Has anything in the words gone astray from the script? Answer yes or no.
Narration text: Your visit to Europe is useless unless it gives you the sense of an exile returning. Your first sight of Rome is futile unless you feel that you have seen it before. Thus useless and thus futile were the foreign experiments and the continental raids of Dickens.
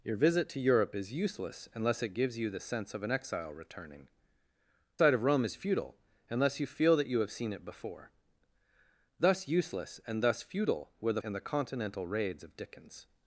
yes